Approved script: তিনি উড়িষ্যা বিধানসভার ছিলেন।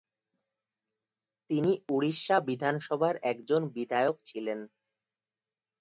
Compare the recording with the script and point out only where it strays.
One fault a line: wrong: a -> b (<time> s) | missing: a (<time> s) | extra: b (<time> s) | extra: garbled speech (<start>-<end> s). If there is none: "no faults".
extra: একজন বিধায়ক (3.3 s)